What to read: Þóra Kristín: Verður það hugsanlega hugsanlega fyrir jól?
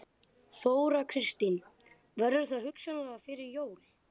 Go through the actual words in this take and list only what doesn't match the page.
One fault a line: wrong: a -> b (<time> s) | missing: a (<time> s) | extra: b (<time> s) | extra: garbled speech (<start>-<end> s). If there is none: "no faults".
missing: hugsanlega (3.2 s)